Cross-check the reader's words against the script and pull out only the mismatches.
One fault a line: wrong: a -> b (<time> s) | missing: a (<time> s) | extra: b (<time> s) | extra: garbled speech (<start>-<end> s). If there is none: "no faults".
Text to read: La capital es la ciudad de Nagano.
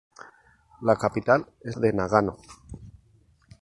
missing: la ciudad (1.8 s)